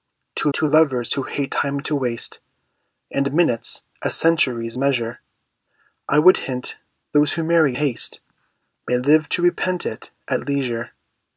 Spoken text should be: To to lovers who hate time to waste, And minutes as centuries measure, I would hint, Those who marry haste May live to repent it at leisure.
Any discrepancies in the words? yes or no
no